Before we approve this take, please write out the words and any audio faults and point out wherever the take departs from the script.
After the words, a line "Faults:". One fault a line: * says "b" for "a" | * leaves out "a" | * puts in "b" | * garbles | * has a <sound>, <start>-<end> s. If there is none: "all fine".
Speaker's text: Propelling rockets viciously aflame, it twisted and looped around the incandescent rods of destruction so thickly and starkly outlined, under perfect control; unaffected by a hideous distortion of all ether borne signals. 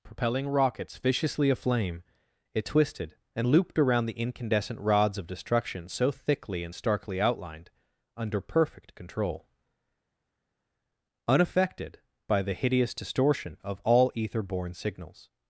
Propelling rockets viciously aflame, it twisted and looped around the incandescent rods of destruction so thickly and starkly outlined, under perfect control; unaffected by the hideous distortion of all ether borne signals.
Faults:
* says "the" for "a"